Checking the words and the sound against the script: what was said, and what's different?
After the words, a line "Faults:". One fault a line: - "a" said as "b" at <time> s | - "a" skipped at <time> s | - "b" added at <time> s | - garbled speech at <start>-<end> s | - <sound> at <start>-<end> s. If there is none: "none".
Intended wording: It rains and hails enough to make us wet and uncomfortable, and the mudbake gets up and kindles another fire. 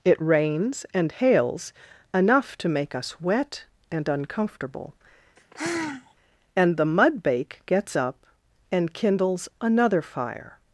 It rains and hails enough to make us wet and uncomfortable, and the mudbake gets up and kindles another fire.
Faults:
- sigh at 5.4-6.1 s